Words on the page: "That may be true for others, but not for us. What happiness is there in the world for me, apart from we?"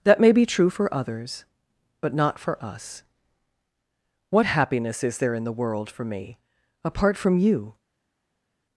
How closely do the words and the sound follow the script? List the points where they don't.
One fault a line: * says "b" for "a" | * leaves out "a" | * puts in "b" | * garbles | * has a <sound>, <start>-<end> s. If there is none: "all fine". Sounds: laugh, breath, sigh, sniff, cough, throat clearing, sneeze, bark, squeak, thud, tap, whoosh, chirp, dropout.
* says "you" for "we"